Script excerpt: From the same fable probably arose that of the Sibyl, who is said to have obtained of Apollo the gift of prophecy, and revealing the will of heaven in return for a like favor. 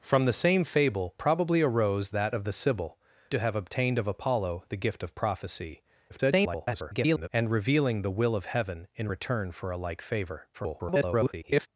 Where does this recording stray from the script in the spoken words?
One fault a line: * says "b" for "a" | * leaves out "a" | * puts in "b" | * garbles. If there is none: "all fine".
* leaves out "who is said"
* garbles
* garbles